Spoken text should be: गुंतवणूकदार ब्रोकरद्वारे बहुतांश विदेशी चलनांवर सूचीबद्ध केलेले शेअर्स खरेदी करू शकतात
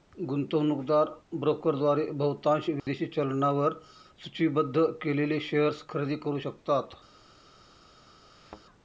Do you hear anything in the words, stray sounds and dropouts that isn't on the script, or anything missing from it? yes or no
yes